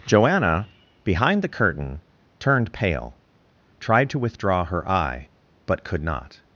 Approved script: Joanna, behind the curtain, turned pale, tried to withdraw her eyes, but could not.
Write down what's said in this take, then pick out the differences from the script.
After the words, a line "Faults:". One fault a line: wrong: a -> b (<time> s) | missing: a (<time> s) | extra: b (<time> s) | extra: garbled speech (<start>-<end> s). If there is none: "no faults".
Joanna, behind the curtain, turned pale, tried to withdraw her eye, but could not.
Faults:
wrong: eyes -> eye (4.9 s)